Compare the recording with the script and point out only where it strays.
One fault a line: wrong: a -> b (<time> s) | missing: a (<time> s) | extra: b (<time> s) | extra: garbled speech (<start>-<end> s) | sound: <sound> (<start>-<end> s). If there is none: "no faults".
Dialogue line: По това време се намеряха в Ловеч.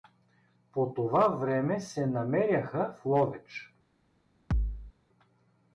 sound: thud (4.5-4.9 s)